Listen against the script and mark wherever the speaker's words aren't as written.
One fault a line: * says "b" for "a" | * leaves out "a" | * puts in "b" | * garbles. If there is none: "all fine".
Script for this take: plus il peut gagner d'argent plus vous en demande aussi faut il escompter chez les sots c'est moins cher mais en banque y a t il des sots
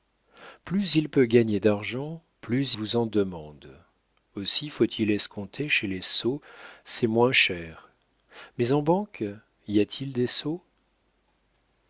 all fine